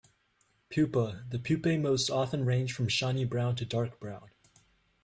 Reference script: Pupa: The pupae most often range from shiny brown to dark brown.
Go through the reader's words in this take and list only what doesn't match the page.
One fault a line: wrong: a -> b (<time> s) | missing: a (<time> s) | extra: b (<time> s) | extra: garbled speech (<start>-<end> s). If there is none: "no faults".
no faults